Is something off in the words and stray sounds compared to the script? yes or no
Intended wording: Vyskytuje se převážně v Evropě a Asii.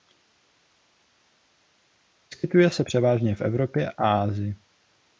no